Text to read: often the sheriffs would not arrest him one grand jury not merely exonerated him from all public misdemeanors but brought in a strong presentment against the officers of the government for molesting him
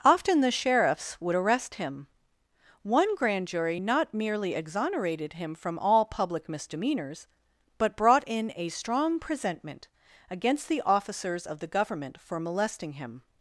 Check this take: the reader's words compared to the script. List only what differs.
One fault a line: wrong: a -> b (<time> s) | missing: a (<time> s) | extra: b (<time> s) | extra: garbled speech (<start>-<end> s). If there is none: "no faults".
missing: not (1.4 s)